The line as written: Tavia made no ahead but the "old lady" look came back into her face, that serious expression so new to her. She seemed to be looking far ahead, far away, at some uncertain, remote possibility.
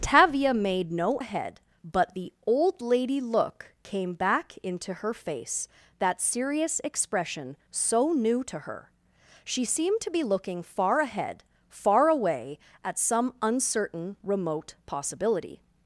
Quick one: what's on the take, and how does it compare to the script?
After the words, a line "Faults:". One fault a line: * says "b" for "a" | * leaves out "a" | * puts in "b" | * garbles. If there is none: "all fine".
Tavia made no ahead but the "old lady" look came back into her face, that serious expression so new to her. She seemed to be looking far ahead, far away, at some uncertain, remote possibility.
Faults:
all fine